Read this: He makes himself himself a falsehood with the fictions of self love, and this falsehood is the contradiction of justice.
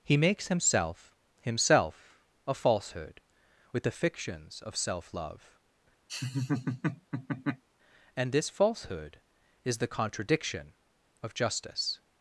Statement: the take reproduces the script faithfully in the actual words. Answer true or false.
true